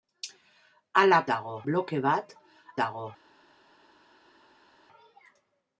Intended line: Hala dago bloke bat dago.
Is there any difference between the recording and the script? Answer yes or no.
no